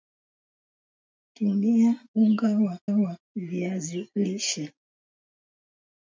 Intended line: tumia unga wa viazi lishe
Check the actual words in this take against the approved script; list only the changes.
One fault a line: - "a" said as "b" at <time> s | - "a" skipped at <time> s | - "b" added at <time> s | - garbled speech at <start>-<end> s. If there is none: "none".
- "wa" added at 2.8 s